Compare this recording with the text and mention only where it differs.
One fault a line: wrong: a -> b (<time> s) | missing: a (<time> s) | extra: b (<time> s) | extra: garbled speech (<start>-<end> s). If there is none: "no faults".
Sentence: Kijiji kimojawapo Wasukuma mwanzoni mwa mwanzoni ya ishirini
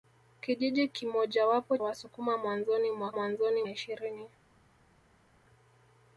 no faults